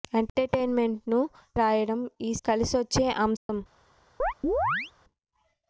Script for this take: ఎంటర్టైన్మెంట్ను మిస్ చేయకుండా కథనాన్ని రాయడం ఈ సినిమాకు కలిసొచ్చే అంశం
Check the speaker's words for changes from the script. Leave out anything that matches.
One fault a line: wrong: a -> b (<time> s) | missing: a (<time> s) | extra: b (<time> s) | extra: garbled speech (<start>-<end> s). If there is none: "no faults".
missing: మిస్ చేయకుండా కథనాన్ని (1.2 s)
missing: సినిమాకు (2.3 s)